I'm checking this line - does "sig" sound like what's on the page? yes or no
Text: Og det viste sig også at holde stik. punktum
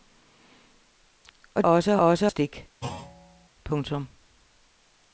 no